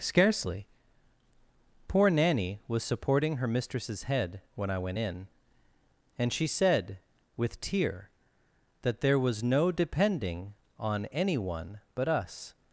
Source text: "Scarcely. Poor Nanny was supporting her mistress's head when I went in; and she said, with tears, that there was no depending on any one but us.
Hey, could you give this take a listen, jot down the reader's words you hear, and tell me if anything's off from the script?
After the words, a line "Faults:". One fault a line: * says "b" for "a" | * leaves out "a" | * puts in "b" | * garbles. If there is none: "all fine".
"Scarcely. Poor Nanny was supporting her mistress's head when I went in; and she said, with tear, that there was no depending on any one but us.
Faults:
* says "tear" for "tears"